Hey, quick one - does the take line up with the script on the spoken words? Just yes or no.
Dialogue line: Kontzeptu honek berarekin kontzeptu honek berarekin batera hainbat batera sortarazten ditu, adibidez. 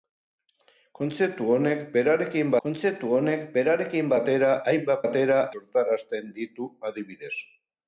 yes